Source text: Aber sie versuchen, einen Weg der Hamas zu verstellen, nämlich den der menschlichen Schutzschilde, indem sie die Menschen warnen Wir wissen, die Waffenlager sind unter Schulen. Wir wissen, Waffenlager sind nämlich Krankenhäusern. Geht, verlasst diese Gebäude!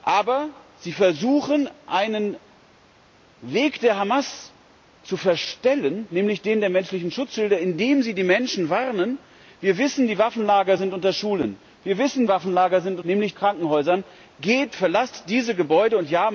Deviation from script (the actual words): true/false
false